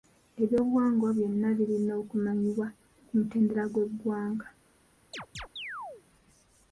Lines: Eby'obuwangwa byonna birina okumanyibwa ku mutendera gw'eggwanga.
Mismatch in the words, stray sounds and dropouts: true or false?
true